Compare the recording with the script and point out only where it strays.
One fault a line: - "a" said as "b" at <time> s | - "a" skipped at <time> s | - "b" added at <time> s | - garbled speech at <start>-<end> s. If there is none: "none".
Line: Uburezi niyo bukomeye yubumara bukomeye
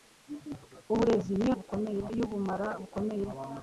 none